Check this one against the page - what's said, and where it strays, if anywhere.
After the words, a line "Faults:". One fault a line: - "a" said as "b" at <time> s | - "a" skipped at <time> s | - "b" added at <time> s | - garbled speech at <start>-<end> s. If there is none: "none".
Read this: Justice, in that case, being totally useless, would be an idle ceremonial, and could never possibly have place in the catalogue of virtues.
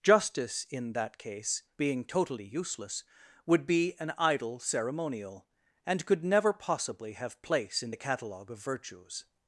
Justice, in that case, being totally useless, would be an idle ceremonial, and could never possibly have place in the catalogue of virtues.
Faults:
none